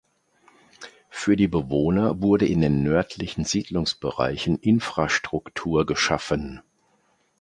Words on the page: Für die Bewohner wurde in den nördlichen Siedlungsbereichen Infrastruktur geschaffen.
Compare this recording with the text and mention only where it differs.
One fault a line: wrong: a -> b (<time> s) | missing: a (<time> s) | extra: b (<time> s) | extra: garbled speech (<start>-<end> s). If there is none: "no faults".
no faults